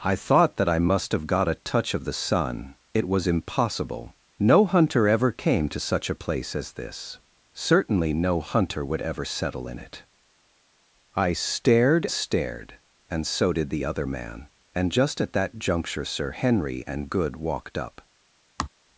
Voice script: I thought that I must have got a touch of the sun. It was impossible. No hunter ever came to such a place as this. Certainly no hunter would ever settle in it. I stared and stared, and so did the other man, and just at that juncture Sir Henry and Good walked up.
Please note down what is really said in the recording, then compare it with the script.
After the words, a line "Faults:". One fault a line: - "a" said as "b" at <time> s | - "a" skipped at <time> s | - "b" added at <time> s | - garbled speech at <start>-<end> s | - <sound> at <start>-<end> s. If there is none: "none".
I thought that I must have got a touch of the sun. It was impossible. No hunter ever came to such a place as this. Certainly no hunter would ever settle in it. I stared stared, and so did the other man, and just at that juncture Sir Henry and Good walked up.
Faults:
- "and" skipped at 12.1 s
- sigh at 18.6-18.7 s